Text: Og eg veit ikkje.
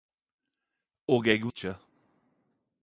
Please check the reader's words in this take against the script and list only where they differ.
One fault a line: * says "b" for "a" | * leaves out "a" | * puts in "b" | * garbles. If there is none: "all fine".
* leaves out "veit"